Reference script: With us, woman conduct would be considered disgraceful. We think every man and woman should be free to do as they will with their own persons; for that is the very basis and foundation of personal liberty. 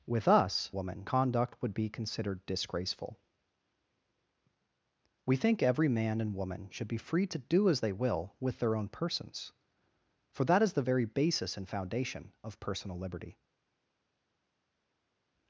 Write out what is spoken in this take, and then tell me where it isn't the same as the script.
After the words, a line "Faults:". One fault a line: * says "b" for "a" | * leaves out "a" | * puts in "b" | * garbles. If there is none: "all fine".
With us, woman conduct would be considered disgraceful. We think every man and woman should be free to do as they will with their own persons; for that is the very basis and foundation of personal liberty.
Faults:
all fine